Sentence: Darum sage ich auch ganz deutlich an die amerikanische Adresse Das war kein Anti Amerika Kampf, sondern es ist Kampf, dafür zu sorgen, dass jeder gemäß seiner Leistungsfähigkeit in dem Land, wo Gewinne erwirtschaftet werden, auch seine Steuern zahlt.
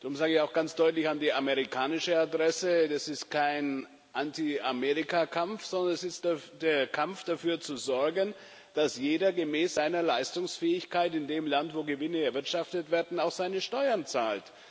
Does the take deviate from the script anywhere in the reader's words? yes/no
yes